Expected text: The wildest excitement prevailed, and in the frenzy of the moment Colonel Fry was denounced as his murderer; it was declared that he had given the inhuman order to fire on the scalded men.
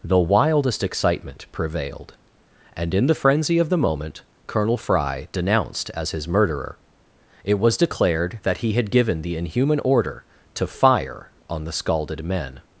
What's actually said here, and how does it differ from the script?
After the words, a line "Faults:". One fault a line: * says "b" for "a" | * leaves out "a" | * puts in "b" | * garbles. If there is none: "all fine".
The wildest excitement prevailed, and in the frenzy of the moment Colonel Fry denounced as his murderer; it was declared that he had given the inhuman order to fire on the scalded men.
Faults:
* leaves out "was"